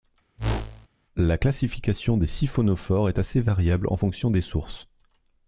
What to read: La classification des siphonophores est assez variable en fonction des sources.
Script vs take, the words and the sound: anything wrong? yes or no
yes